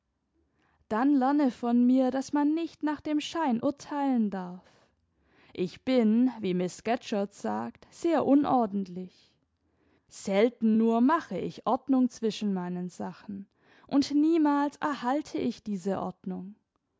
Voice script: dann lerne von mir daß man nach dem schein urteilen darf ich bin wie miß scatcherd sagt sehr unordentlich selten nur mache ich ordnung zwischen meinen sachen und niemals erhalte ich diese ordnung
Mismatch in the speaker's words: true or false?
true